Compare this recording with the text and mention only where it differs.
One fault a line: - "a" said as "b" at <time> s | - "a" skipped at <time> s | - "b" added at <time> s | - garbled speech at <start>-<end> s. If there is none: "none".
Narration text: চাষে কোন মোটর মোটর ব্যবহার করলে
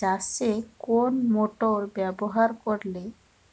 - "মোটর" skipped at 1.8 s